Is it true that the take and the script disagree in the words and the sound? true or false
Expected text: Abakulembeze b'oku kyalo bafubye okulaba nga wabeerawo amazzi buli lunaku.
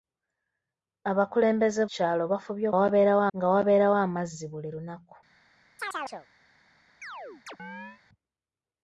true